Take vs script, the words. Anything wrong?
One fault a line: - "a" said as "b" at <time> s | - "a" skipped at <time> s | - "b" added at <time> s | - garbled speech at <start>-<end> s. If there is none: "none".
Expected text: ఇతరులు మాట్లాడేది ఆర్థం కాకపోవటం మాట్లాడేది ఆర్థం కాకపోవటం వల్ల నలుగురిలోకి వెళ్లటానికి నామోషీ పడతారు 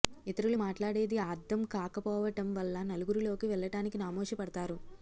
- "మాట్లాడేది ఆర్థం కాకపోవటం" skipped at 2.5 s